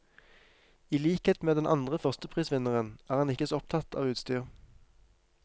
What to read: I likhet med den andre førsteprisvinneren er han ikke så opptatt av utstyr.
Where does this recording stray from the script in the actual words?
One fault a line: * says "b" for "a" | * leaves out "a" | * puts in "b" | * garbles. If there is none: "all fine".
all fine